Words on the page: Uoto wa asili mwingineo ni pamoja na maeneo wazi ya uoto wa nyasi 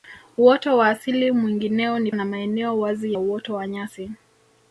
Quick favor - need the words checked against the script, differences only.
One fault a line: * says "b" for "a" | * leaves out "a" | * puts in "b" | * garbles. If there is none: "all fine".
* leaves out "pamoja"
* leaves out "ya"